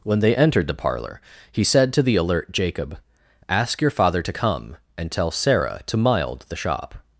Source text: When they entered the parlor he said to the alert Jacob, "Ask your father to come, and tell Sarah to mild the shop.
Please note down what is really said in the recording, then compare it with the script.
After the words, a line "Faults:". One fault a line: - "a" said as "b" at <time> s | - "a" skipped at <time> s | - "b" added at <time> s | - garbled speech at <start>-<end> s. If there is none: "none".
When they entered the parlor he said to the alert Jacob, "Ask your father to come, and tell Sarah to mild the shop.
Faults:
none